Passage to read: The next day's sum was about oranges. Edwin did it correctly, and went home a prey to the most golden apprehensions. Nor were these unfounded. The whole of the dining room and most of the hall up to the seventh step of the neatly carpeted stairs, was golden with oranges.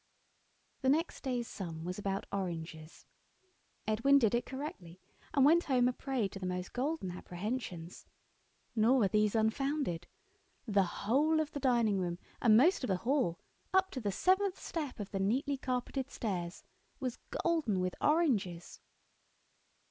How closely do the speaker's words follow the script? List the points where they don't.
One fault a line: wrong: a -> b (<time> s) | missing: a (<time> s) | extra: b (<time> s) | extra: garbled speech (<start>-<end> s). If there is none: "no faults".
no faults